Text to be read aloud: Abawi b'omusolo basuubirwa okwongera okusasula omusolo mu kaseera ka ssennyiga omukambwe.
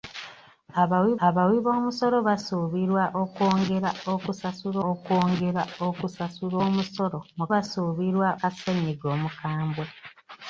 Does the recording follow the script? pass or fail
fail